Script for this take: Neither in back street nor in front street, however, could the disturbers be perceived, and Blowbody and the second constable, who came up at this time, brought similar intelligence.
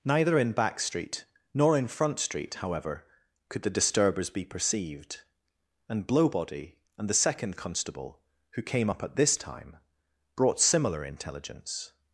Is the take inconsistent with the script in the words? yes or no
no